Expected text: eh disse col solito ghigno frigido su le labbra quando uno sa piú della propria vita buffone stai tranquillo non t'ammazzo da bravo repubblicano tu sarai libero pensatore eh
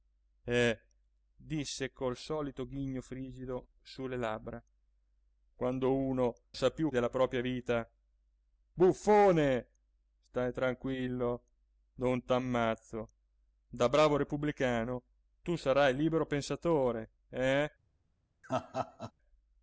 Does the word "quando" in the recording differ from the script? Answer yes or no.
no